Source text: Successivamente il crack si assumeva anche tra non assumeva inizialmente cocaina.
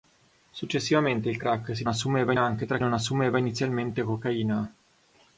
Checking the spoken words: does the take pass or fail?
pass